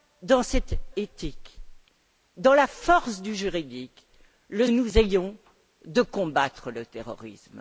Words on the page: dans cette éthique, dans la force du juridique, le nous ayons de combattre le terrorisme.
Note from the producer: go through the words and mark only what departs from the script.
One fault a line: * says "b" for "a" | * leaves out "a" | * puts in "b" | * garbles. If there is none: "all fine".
all fine